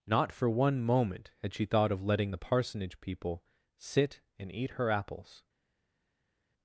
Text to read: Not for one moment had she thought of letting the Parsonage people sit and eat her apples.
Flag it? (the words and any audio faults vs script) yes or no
no